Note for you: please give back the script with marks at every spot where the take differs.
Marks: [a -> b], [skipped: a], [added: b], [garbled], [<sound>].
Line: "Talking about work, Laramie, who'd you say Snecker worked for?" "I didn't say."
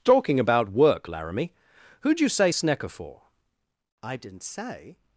"Talking about work, Laramie, who'd you say Snecker [skipped: worked] for?" "I didn't say."